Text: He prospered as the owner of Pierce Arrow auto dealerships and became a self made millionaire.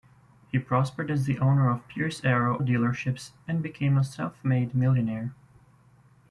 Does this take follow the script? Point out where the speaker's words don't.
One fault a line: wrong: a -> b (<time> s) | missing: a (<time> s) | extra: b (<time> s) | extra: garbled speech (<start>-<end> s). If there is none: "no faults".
missing: auto (2.6 s)